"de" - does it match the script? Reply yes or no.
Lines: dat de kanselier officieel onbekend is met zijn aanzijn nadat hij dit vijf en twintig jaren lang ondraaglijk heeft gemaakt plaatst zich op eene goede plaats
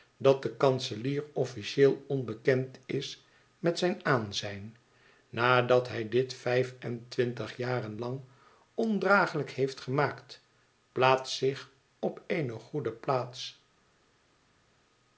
yes